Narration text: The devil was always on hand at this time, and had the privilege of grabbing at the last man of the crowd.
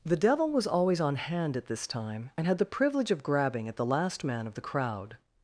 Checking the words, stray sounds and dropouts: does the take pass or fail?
pass